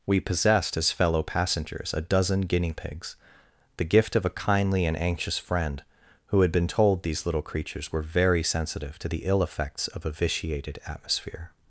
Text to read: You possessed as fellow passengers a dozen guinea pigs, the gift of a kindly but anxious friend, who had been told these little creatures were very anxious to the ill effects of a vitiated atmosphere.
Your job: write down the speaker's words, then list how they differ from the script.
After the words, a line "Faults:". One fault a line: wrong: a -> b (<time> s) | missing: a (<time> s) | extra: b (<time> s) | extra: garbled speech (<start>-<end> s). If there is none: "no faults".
We possessed as fellow passengers a dozen guinea pigs, the gift of a kindly and anxious friend, who had been told these little creatures were very sensitive to the ill effects of a vitiated atmosphere.
Faults:
wrong: You -> We (0.1 s)
wrong: but -> and (4.8 s)
wrong: anxious -> sensitive (8.4 s)